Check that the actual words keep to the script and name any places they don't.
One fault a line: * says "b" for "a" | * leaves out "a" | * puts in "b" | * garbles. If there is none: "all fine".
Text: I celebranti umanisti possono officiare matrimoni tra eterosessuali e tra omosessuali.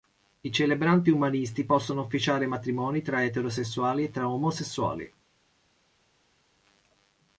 all fine